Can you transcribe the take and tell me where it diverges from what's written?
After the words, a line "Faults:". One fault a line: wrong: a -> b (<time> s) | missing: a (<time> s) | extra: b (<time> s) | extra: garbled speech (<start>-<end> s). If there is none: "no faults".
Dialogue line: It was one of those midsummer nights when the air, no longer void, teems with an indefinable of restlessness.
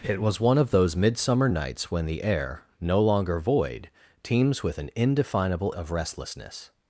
It was one of those midsummer nights when the air, no longer void, teems with an indefinable of restlessness.
Faults:
no faults